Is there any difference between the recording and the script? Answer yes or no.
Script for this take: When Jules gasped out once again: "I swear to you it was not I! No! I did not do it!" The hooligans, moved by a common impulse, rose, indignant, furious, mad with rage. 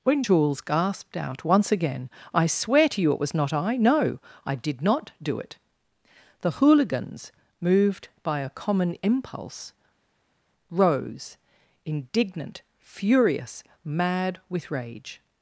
no